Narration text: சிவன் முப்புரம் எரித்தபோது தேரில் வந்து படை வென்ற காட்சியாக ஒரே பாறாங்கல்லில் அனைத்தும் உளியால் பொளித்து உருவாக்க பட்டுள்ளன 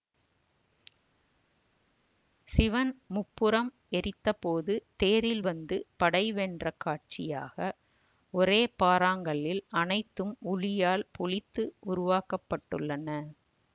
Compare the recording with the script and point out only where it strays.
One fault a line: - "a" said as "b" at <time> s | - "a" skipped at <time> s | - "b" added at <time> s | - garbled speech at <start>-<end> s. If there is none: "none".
none